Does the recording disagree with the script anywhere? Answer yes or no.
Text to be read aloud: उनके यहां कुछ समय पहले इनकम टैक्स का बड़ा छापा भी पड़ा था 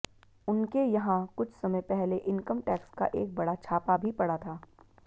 yes